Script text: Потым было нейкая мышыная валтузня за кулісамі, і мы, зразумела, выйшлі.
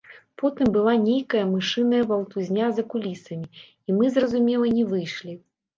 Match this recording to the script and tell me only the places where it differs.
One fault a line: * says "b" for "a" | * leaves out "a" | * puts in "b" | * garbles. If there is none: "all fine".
* says "была" for "было"
* puts in "не"